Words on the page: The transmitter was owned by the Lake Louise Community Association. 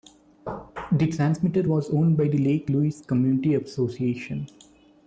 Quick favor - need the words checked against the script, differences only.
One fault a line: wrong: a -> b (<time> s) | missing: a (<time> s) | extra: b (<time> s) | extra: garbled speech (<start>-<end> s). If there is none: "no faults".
no faults